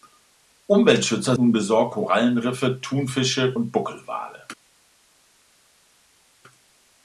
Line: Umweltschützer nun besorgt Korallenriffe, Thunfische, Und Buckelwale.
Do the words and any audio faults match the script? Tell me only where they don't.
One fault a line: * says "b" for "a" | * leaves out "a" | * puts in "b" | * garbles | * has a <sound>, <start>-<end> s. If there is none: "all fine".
all fine